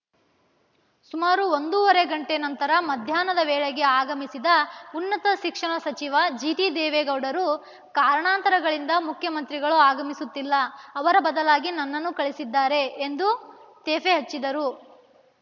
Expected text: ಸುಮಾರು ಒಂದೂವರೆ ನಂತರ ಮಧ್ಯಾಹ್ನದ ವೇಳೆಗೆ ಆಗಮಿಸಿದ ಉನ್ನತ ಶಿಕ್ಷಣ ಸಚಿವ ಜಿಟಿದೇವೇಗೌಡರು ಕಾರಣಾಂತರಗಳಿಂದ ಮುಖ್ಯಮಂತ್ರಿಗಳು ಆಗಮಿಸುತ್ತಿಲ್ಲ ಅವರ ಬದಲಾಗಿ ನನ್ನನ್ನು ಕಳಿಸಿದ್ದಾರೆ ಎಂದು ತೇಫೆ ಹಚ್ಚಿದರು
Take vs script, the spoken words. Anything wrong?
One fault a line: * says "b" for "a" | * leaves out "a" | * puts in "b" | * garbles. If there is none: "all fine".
* puts in "ಗಂಟೆ"